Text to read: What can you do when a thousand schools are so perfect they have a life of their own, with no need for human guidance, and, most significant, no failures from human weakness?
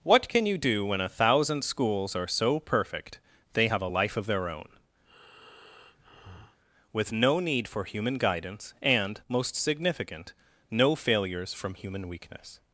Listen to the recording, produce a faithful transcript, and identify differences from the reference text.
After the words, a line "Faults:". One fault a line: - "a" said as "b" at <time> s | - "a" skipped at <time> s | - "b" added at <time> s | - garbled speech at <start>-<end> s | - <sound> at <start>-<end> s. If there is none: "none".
What can you do when a thousand schools are so perfect they have a life of their own, with no need for human guidance, and, most significant, no failures from human weakness?
Faults:
- breath at 5.0-6.6 s